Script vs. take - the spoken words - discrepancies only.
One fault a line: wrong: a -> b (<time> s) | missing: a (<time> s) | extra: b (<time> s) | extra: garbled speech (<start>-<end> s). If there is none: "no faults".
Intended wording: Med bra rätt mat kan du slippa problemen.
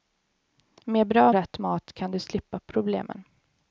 no faults